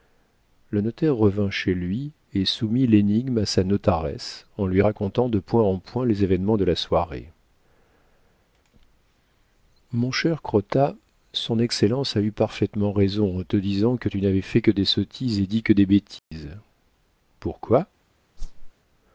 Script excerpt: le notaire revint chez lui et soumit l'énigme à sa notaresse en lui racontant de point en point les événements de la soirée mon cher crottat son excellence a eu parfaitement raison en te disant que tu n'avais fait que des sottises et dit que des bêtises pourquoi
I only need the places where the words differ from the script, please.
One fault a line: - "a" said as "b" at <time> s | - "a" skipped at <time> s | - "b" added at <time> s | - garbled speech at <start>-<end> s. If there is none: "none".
none